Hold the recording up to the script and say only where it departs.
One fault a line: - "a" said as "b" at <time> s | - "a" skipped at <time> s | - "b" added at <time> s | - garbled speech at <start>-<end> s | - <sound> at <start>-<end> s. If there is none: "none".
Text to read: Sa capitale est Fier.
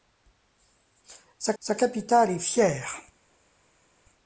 - "sa" added at 1.6 s